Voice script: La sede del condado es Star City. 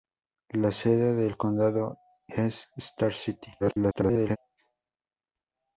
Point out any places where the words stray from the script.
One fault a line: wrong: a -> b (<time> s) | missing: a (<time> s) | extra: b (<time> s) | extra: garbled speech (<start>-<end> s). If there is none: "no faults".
extra: garbled speech (3.6-4.4 s)